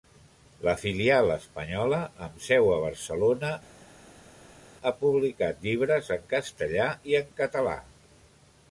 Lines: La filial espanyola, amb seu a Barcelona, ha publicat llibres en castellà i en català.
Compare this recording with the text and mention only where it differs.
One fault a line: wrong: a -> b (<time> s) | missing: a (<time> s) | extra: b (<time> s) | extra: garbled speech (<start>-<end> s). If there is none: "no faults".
no faults